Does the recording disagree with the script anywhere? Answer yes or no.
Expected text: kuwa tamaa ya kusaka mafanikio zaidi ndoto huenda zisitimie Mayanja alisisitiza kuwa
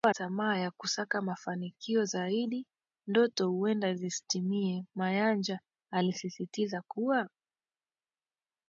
no